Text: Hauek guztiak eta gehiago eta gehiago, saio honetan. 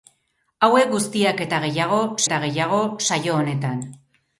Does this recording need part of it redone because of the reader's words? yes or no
no